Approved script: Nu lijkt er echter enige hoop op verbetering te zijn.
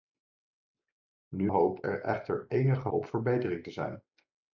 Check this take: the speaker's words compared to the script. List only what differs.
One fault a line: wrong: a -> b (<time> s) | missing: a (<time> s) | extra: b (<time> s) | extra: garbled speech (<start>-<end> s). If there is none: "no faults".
wrong: lijkt -> hoop (1.5 s)
missing: hoop (2.9 s)